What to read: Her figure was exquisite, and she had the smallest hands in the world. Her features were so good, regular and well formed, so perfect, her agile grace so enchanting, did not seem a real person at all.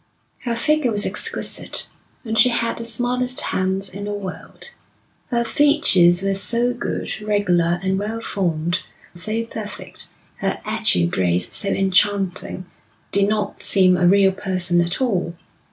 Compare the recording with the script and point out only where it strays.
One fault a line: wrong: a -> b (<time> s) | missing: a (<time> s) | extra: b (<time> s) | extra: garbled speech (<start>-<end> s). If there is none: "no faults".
no faults